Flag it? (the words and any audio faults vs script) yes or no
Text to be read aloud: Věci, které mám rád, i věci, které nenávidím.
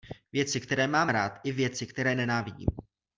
no